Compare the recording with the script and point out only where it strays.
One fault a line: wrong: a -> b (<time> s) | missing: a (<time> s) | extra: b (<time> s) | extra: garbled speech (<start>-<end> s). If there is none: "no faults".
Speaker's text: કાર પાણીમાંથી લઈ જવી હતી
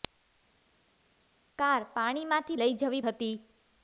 no faults